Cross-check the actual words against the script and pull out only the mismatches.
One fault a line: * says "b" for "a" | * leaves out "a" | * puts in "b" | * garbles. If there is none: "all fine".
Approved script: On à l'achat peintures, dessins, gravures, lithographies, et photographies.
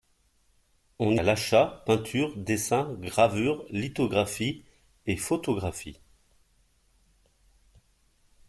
all fine